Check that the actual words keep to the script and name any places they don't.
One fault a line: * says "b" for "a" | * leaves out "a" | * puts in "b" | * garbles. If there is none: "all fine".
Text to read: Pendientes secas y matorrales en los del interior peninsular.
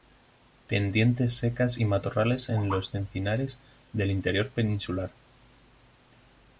* puts in "encinares"